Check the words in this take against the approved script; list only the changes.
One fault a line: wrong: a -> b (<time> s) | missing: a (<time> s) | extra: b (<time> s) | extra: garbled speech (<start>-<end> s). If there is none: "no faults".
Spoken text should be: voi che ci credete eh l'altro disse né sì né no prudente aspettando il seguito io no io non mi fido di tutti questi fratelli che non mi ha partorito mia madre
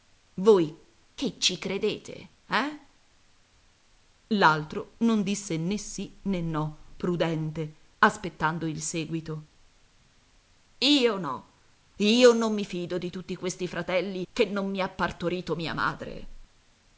extra: non (5.0 s)